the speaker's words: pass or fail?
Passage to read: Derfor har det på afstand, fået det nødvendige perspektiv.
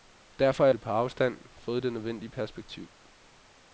pass